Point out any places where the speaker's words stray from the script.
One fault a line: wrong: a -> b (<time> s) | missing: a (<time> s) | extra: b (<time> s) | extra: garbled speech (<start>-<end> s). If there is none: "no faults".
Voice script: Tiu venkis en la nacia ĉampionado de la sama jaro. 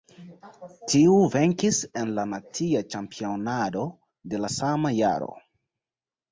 no faults